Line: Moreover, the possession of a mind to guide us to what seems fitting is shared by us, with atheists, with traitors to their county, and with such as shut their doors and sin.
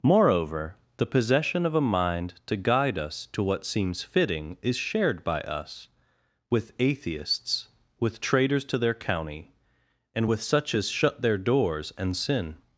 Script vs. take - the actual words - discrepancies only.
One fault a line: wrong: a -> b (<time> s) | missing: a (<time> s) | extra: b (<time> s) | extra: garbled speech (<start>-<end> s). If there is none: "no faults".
no faults